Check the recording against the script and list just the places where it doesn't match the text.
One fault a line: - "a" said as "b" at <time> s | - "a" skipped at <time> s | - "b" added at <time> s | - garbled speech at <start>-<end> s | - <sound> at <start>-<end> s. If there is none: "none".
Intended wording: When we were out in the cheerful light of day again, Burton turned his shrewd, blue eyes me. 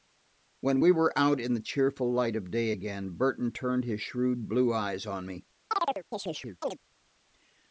- "on" added at 5.1 s
- chirp at 5.7-6.8 s